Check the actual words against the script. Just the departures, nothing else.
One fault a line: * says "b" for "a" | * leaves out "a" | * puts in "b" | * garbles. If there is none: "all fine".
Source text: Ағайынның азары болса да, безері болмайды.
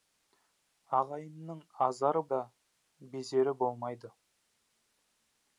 * leaves out "болса"